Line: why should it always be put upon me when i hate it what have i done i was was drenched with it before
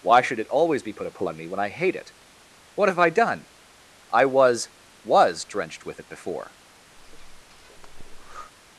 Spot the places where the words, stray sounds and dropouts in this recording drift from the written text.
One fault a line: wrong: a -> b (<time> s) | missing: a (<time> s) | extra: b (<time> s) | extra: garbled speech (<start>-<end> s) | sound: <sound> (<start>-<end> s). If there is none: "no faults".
sound: breath (7.0-8.5 s)